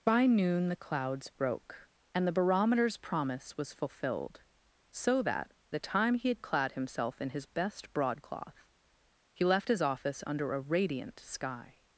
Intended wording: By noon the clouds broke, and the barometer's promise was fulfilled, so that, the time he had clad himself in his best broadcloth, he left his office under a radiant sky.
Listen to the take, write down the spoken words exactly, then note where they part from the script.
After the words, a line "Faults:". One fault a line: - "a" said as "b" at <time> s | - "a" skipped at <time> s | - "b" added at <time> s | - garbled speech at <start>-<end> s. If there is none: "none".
By noon the clouds broke, and the barometer's promise was fulfilled, so that, the time he had clad himself in his best broadcloth, he left his office under a radiant sky.
Faults:
none